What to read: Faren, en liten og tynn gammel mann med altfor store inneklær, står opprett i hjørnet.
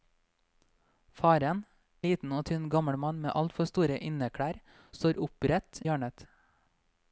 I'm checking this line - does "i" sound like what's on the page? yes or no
no